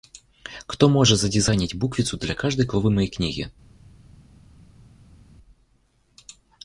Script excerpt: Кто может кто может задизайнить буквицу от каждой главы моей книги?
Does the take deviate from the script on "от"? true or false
true